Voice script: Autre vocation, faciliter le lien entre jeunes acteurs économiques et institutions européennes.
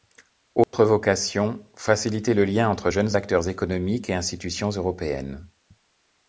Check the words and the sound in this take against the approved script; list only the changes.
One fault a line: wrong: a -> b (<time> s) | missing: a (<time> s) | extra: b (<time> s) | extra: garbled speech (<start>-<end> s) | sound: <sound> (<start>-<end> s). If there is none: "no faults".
sound: dropout (0.6-0.7 s)